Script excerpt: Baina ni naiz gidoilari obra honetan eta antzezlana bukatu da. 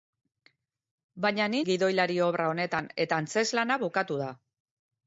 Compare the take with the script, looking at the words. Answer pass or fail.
fail